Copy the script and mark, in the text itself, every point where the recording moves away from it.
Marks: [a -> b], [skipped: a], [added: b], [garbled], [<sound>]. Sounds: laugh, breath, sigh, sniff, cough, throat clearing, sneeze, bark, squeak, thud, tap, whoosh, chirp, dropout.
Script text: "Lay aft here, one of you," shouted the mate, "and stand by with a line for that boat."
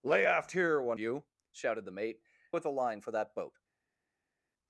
"Lay aft here, one [skipped: of] you," shouted the mate, [skipped: "and stand by] with a line for that boat."